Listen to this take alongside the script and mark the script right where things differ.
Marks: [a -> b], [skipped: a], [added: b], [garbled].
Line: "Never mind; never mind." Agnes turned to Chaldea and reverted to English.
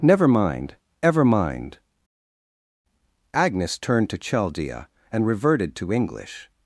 "Never mind; [never -> ever] mind." Agnes turned to Chaldea and reverted to English.